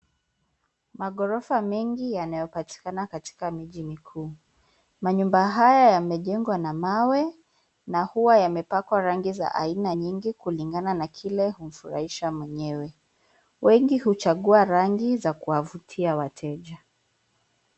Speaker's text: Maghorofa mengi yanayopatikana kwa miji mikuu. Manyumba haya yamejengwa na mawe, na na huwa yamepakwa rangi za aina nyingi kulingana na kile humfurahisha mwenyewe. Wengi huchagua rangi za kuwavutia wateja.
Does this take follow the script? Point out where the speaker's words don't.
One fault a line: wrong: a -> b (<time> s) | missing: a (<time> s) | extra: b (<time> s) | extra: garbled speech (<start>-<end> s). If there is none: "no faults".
wrong: kwa -> katika (3.1 s)
missing: na (8.0 s)